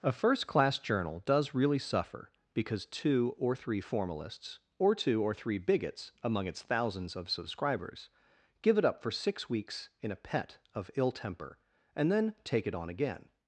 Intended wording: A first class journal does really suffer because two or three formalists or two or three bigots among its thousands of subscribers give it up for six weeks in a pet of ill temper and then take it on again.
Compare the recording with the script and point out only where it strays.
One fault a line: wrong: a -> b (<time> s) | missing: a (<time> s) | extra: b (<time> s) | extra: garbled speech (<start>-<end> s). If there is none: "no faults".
no faults